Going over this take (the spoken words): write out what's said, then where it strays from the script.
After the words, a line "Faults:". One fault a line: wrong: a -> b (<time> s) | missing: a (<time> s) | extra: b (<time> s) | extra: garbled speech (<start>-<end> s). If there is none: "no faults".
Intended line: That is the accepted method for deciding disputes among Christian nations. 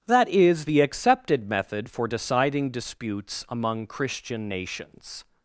That is the accepted method for deciding disputes among Christian nations.
Faults:
no faults